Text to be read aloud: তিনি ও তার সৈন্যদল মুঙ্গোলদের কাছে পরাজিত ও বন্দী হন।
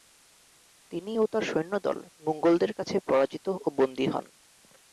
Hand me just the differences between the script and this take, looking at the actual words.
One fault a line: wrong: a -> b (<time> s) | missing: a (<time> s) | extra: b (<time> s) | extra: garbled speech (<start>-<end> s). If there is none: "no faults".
no faults